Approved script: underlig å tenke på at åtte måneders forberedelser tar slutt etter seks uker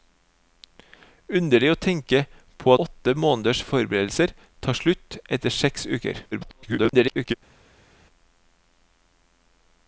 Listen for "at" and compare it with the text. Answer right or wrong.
wrong